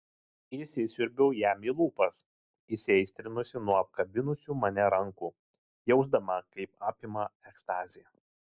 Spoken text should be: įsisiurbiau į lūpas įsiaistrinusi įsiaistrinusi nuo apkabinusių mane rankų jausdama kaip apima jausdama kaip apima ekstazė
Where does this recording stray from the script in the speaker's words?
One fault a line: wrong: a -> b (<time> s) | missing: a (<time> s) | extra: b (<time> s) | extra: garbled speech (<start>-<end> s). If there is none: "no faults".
extra: jam (1.4 s)
missing: įsiaistrinusi (3.6 s)
missing: jausdama kaip apima (7.3 s)